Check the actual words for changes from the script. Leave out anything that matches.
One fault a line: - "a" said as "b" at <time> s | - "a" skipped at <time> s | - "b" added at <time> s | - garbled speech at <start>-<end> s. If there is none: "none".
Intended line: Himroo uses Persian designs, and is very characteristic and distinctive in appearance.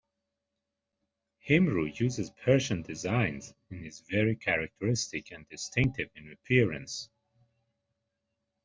none